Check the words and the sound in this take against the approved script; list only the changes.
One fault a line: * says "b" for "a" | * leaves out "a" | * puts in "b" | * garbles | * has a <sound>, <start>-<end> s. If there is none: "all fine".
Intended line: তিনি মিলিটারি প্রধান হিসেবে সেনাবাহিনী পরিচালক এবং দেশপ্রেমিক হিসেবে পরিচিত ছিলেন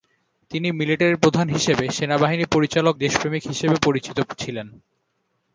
* leaves out "এবং"